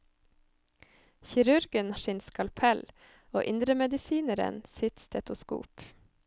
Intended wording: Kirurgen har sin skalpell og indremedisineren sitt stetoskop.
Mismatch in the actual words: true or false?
true